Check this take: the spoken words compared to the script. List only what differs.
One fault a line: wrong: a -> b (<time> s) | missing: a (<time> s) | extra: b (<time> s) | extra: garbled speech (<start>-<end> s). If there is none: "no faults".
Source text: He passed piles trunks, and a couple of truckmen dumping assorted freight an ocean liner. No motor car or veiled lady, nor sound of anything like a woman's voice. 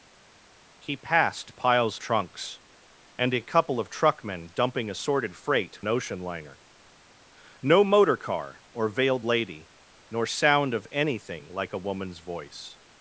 no faults